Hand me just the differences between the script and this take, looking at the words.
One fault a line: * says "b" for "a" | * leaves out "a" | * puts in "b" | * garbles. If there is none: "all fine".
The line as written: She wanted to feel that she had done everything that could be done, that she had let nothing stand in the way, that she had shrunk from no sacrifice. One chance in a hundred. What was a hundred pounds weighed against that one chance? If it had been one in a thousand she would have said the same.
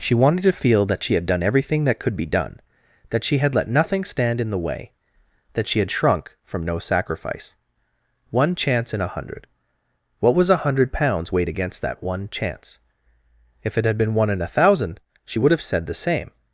all fine